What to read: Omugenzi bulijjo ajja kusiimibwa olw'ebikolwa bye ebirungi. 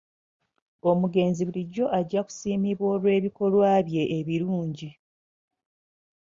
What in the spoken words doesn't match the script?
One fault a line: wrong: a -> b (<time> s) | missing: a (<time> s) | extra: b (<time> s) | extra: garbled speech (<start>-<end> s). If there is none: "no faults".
no faults